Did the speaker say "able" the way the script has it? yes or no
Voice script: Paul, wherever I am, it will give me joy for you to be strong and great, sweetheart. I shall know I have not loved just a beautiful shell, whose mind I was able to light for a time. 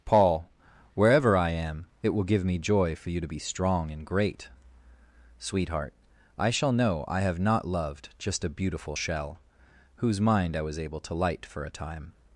yes